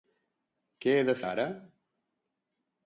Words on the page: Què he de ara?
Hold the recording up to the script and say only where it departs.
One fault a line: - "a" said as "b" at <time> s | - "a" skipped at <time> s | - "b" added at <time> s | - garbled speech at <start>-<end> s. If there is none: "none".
none